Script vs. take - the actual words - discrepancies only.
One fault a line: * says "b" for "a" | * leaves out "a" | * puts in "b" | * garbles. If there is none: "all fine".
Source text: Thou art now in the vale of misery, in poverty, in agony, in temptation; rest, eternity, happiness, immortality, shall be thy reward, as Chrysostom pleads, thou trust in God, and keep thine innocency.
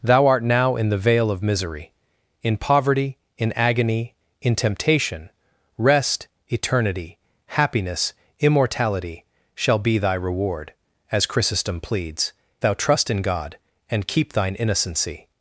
all fine